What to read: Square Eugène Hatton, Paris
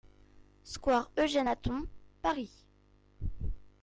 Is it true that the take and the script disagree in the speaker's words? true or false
false